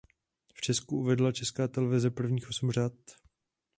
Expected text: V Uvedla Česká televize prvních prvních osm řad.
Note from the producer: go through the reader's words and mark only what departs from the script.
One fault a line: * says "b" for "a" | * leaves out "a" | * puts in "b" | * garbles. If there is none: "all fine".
* puts in "Česku"
* leaves out "prvních"